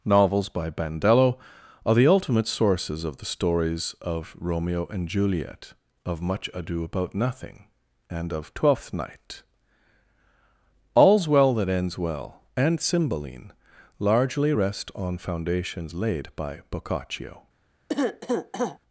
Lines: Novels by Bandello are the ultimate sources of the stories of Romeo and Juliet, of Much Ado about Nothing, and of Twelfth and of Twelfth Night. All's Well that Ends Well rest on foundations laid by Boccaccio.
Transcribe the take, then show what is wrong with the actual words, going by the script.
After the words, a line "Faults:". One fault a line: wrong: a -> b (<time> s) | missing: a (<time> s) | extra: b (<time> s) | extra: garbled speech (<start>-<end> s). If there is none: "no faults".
Novels by Bandello are the ultimate sources of the stories of Romeo and Juliet, of Much Ado about Nothing, and of Twelfth Night. All's Well that Ends Well and Cymbeline largely rest on foundations laid by Boccaccio.
Faults:
missing: and of Twelfth (8.9 s)
extra: and Cymbeline largely (12.6 s)